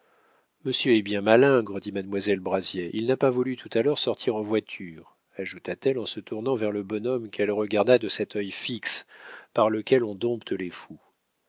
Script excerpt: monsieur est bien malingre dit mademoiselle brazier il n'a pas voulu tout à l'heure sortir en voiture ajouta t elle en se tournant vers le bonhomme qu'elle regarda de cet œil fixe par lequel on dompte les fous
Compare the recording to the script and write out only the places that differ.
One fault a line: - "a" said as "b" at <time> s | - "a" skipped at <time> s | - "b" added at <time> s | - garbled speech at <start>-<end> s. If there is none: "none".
none